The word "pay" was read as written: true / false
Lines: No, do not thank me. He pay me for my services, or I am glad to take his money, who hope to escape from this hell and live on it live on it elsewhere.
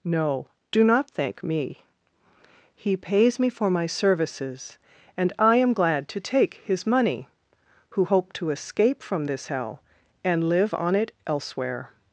false